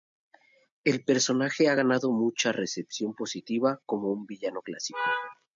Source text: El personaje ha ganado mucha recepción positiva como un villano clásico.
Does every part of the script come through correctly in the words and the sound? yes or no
yes